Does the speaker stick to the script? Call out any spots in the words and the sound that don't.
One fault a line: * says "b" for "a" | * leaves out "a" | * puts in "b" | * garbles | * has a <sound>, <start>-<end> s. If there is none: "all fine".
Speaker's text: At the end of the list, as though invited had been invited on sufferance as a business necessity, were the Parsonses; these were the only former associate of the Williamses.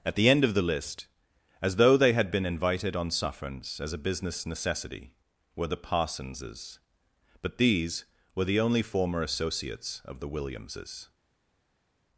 * says "they" for "invited"
* puts in "but"
* says "associates" for "associate"